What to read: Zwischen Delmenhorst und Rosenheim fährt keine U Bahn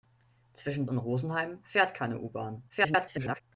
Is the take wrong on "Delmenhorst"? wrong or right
wrong